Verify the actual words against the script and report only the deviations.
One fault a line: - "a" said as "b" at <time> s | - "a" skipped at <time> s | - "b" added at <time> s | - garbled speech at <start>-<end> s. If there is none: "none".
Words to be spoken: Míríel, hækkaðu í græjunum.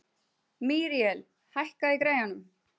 none